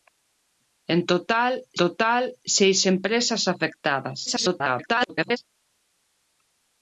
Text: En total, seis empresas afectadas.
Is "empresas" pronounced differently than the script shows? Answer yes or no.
no